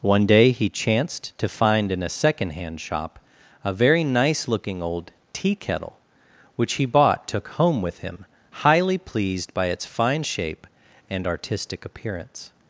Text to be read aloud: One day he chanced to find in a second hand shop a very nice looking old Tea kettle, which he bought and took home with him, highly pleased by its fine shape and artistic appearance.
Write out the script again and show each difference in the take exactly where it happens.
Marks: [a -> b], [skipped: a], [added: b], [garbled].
One day he chanced to find in a second hand shop a very nice looking old Tea kettle, which he bought [skipped: and] took home with him, highly pleased by its fine shape and artistic appearance.